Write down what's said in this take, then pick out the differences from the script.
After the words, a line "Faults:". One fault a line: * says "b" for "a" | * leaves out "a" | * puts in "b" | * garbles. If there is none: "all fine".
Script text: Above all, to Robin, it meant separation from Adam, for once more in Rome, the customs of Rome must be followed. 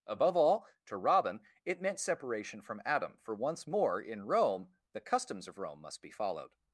Above all, to Robin, it meant separation from Adam, for once more in Rome, the customs of Rome must be followed.
Faults:
all fine